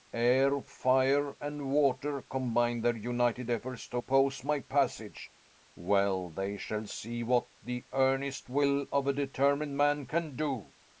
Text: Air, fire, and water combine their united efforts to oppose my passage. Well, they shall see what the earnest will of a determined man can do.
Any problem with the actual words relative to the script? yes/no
no